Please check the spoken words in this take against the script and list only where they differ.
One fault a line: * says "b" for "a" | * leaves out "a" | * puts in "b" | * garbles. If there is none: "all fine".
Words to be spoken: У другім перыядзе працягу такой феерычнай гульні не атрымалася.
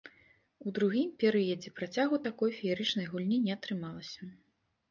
all fine